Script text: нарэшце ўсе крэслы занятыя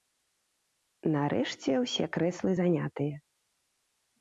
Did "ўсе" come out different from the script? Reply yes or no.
no